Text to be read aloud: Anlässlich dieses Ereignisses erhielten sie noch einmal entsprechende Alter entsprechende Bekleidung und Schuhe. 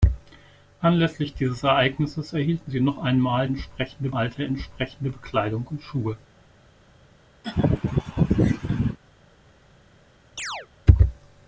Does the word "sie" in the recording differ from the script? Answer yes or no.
no